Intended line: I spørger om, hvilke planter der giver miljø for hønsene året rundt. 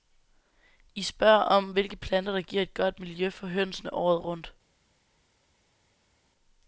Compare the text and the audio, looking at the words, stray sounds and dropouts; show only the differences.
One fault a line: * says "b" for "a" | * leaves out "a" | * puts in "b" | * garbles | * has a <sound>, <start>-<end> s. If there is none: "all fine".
* puts in "et godt"